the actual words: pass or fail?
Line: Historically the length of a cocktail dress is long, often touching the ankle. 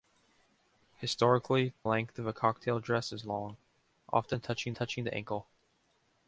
fail